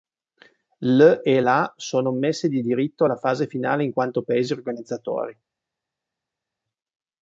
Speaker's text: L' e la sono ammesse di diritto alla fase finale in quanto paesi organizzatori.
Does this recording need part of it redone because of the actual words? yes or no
no